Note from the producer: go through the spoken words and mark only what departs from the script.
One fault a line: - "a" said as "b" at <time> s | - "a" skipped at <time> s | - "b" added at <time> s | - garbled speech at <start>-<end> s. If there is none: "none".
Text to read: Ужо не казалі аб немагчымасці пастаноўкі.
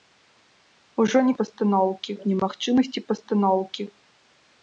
- "казалі" said as "пастаноўкі" at 1.4 s